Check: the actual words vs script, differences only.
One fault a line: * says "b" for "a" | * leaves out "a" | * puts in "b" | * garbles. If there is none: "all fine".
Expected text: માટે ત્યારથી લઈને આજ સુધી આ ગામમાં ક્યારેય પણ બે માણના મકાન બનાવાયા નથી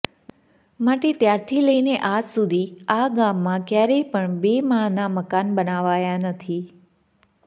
all fine